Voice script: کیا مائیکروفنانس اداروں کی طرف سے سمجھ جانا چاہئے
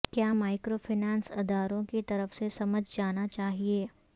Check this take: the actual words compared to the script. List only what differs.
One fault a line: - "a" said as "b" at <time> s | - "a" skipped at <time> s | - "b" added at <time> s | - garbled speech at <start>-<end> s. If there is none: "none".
none